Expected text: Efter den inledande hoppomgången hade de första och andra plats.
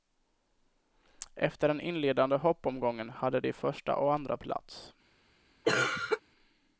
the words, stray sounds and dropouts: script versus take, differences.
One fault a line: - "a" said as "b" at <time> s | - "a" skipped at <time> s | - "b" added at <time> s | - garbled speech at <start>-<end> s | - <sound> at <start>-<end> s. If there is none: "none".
- cough at 5.6-6.2 s